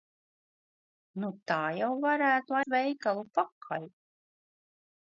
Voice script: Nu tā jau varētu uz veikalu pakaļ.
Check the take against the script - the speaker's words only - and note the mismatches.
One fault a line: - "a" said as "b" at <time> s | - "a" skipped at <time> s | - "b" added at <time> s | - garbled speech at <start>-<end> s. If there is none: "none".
none